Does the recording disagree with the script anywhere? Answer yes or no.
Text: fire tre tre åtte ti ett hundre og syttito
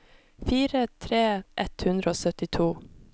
yes